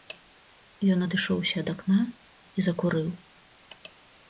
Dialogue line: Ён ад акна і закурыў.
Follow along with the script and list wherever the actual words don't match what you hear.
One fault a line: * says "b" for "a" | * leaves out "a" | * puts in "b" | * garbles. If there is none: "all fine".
* puts in "адышоўся"